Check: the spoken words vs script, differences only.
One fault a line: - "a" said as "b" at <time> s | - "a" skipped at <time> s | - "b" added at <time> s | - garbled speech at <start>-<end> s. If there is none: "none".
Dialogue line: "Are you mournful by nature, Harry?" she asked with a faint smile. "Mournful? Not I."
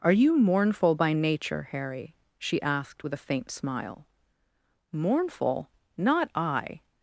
none